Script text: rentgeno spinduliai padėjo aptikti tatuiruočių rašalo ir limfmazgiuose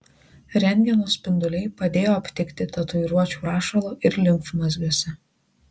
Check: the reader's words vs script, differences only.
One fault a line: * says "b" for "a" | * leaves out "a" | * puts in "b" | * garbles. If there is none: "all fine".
all fine